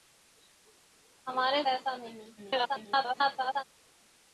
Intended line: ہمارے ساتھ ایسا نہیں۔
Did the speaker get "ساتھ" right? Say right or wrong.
wrong